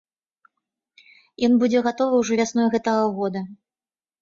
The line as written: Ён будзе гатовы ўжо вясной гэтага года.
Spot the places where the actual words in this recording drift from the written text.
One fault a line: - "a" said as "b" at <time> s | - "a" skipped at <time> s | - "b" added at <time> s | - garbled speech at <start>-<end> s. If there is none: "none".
none